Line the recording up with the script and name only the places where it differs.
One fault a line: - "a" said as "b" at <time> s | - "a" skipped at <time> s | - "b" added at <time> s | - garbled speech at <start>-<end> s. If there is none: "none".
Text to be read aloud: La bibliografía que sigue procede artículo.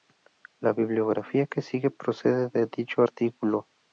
- "de dicho" added at 2.5 s